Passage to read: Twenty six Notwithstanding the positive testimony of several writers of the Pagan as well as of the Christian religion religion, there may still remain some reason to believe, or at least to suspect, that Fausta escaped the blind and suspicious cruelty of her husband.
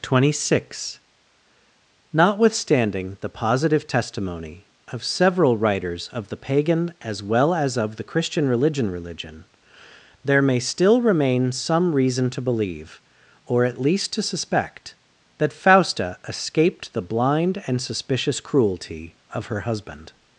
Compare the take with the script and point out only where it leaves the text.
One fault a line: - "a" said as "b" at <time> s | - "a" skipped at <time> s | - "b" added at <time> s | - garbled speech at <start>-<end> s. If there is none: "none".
none